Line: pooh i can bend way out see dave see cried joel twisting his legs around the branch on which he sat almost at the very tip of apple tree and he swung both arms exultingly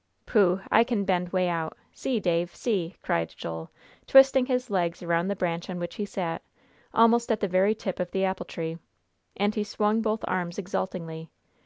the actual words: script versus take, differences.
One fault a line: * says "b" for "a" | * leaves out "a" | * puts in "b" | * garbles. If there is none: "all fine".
* puts in "the"